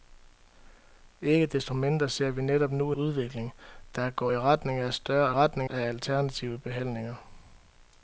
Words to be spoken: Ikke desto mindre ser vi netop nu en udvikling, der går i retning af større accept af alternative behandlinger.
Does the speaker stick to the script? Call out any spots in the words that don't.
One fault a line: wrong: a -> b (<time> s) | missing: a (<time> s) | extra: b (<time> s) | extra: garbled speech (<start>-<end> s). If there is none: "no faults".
missing: en (2.9 s)
wrong: accept -> retning (5.3 s)